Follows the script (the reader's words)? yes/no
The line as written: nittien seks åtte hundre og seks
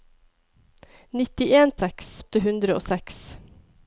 yes